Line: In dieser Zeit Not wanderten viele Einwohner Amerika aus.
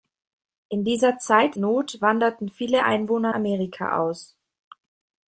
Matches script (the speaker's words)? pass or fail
pass